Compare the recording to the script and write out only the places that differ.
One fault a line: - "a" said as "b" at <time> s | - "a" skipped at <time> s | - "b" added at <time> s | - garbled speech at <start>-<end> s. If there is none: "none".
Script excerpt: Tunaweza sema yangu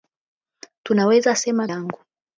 none